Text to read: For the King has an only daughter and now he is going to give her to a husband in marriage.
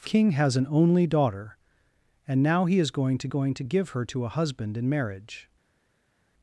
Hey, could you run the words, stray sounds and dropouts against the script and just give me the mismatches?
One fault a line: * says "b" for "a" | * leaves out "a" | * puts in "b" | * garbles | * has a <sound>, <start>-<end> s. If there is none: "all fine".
* leaves out "the"
* puts in "going to"